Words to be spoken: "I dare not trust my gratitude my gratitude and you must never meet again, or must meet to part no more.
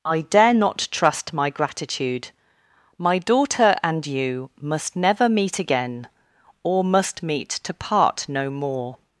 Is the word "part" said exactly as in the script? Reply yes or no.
yes